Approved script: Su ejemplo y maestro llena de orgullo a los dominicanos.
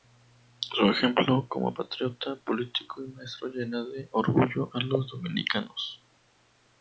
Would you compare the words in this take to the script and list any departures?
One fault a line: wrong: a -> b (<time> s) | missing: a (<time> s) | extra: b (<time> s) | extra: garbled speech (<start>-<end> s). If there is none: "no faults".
extra: como patriota político (1.5 s)